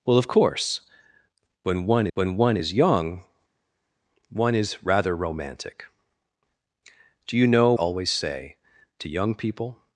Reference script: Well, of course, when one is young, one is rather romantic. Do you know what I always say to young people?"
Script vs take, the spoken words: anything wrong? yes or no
yes